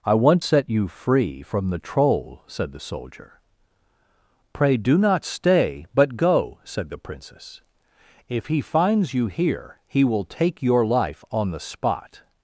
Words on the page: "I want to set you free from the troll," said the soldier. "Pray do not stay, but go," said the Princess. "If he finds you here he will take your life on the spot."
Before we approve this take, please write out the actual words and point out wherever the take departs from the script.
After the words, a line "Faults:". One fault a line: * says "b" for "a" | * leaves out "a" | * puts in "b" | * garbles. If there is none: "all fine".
"I want set you free from the troll," said the soldier. "Pray do not stay, but go," said the Princess. "If he finds you here he will take your life on the spot."
Faults:
* leaves out "to"